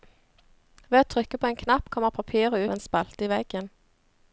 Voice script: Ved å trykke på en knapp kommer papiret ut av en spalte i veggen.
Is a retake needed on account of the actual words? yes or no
yes